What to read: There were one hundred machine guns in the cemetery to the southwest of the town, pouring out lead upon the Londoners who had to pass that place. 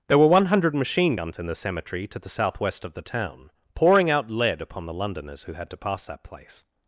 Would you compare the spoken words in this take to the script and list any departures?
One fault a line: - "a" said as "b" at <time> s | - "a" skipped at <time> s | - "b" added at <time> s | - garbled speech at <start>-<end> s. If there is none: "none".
none